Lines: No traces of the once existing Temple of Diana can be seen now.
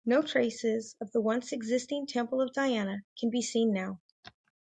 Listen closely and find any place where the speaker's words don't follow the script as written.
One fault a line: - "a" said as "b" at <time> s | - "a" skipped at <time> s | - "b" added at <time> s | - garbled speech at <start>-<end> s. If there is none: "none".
none